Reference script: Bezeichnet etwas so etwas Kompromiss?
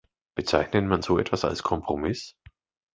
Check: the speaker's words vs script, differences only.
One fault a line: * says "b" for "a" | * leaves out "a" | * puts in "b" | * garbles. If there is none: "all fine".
* says "man" for "etwas"
* puts in "als"